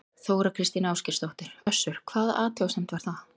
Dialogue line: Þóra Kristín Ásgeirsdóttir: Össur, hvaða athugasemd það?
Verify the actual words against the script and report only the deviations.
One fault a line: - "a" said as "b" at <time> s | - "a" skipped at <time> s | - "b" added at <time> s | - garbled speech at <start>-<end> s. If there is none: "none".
- "var" added at 3.0 s